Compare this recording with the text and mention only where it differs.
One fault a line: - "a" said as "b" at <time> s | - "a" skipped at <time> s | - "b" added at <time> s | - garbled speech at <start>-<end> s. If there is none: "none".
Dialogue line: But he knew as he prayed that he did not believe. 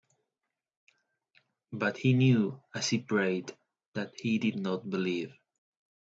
none